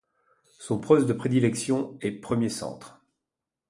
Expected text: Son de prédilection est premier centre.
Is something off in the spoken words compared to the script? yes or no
yes